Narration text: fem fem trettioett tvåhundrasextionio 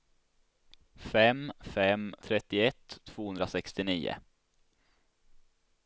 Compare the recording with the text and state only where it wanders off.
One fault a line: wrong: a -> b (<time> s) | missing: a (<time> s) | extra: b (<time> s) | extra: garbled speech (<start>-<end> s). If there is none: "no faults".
no faults